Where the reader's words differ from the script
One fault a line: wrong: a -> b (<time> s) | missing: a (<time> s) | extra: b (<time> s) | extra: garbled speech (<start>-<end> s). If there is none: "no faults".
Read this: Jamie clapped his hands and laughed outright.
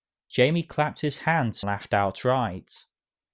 missing: and (1.6 s)